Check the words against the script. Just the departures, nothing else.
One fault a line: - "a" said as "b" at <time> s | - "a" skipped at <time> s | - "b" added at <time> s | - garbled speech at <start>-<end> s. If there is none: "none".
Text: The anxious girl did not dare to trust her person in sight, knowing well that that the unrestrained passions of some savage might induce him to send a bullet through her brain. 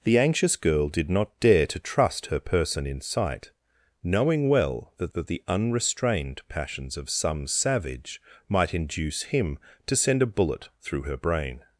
none